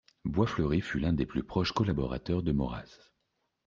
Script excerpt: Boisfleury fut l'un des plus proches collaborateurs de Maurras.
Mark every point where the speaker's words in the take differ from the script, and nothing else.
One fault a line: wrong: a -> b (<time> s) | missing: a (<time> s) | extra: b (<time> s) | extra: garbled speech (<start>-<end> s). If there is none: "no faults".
no faults